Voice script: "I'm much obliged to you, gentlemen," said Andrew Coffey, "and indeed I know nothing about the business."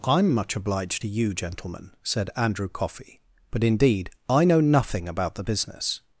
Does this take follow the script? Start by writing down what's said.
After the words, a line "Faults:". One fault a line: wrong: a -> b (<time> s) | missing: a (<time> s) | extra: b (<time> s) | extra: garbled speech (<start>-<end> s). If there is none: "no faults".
"I'm much obliged to you, gentlemen," said Andrew Coffey, "but indeed I know nothing about the business."
Faults:
wrong: and -> but (3.5 s)